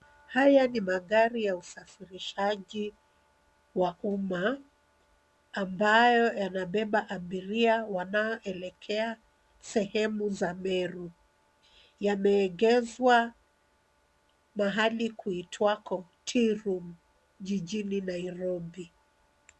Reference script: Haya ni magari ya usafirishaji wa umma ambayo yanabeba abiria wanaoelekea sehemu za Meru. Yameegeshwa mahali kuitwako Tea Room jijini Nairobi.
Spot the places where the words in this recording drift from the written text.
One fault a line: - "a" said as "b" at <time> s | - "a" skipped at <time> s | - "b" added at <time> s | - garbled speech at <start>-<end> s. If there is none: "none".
none